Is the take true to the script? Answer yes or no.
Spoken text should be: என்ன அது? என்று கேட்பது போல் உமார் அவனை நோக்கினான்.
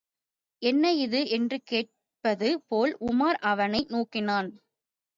no